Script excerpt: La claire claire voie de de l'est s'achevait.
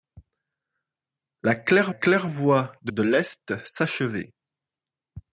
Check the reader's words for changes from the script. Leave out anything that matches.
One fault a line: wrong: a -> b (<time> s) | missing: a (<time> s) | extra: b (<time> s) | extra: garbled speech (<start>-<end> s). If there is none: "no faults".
no faults